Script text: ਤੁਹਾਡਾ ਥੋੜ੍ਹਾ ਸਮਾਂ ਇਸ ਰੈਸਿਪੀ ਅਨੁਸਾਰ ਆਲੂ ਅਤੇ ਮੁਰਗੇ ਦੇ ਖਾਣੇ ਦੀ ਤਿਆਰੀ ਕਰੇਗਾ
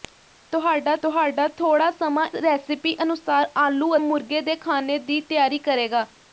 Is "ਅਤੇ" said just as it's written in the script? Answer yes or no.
no